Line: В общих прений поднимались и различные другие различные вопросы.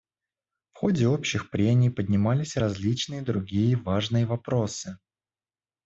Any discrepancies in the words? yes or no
yes